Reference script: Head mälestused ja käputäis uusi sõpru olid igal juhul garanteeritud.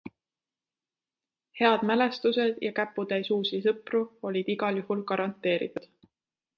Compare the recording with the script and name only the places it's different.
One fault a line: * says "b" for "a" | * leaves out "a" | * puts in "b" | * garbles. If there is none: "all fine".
all fine